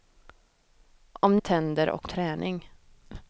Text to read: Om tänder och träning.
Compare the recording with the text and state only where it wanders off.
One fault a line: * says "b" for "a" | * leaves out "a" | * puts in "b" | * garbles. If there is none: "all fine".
all fine